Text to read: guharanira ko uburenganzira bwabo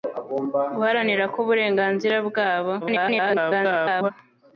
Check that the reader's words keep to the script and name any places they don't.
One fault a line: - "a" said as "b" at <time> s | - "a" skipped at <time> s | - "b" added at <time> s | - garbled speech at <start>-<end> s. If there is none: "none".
- garbled speech at 2.8-4.1 s